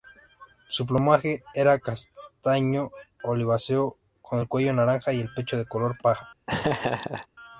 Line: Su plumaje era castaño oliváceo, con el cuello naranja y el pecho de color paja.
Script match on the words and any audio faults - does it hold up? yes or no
no